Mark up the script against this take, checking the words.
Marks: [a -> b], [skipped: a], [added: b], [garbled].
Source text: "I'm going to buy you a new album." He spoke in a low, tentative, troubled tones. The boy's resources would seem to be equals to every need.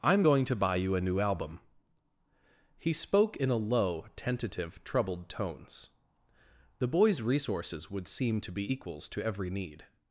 "I'm going to buy you a new album." He spoke in a low, tentative, troubled tones. The boy's resources would seem to be equals to every need.